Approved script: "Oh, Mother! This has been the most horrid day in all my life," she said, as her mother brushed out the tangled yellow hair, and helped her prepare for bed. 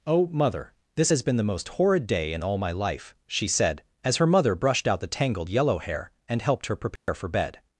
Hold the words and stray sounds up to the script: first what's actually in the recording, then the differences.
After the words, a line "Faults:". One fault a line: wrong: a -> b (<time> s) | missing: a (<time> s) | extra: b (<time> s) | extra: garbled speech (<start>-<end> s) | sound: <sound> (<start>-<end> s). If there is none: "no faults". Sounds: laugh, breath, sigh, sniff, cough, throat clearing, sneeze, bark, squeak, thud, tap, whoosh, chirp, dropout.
"Oh, Mother! This has been the most horrid day in all my life," she said, as her mother brushed out the tangled yellow hair, and helped her prepare for bed.
Faults:
sound: dropout (7.0-7.1 s)